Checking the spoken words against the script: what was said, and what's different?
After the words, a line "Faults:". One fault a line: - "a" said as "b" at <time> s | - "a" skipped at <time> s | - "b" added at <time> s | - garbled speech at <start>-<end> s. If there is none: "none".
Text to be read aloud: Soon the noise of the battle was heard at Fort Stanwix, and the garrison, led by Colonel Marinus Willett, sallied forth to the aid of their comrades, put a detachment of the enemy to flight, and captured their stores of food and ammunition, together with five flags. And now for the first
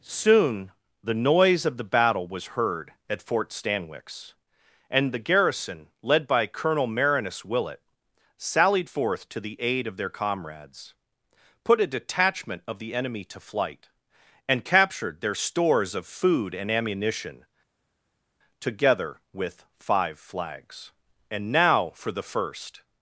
Soon the noise of the battle was heard at Fort Stanwix, and the garrison, led by Colonel Marinus Willett, sallied forth to the aid of their comrades, put a detachment of the enemy to flight, and captured their stores of food and ammunition, together with five flags. And now for the first
Faults:
none